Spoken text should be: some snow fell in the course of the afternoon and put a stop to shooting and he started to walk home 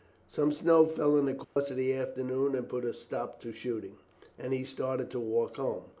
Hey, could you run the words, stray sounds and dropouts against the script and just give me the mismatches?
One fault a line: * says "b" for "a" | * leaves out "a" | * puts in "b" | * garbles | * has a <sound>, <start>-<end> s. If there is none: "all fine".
* has a dropout, 1.4-1.6 s